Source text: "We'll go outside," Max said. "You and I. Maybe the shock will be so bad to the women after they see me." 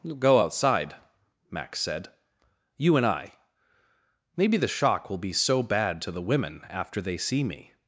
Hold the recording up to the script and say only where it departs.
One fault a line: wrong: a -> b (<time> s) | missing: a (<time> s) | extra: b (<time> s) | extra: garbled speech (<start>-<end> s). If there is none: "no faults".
no faults